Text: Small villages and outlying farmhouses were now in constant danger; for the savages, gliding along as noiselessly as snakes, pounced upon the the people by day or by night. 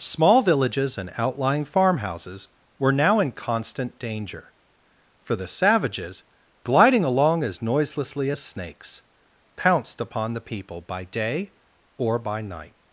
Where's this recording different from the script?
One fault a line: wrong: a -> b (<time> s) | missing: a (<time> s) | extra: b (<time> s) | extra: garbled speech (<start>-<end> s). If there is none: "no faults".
missing: the (10.5 s)